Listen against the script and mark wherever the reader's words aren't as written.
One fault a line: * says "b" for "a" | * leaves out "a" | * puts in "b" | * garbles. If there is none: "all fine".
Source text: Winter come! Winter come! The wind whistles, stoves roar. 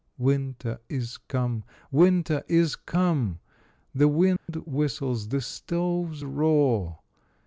* puts in "is"
* puts in "is"
* puts in "the"